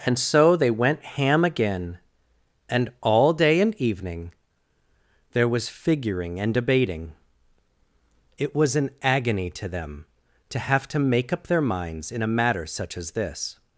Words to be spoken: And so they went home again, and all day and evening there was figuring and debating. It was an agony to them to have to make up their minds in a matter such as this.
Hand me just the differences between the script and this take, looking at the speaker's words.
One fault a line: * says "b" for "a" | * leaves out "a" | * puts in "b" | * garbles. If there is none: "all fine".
* says "ham" for "home"